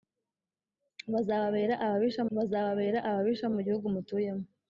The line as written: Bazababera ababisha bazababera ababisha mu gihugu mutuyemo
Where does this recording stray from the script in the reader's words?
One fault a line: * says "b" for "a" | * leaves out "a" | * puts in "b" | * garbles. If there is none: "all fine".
all fine